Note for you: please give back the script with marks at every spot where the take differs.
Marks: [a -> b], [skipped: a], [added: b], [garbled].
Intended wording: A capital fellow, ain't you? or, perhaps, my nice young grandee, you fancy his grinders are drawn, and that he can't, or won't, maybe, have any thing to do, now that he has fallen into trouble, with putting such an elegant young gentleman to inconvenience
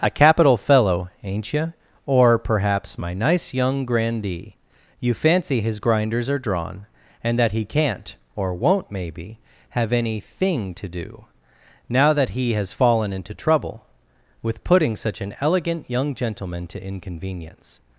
A capital fellow, ain't you? or, perhaps, my nice young grandee, you fancy his grinders are drawn, and that he can't, or won't, maybe, have any thing to do, now that he has fallen into trouble, with putting such an elegant young gentleman to inconvenience